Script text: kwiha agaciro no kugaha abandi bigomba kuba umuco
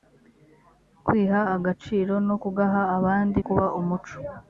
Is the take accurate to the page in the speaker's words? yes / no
no